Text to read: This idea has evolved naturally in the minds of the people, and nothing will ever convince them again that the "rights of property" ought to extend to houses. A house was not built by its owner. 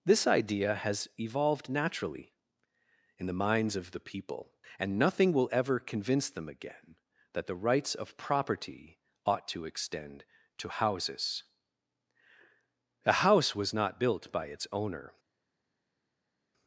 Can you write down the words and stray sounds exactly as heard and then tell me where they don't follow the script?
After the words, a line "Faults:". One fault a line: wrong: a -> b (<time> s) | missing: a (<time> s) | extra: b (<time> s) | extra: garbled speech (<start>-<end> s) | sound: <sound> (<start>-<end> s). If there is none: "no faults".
This idea has evolved naturally in the minds of the people, and nothing will ever convince them again that the "rights of property" ought to extend to houses. A house was not built by its owner.
Faults:
no faults